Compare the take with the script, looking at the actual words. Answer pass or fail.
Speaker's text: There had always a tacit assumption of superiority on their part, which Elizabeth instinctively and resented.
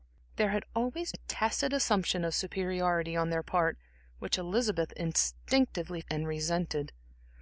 pass